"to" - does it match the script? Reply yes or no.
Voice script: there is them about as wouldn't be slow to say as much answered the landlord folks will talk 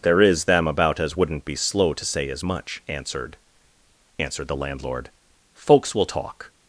yes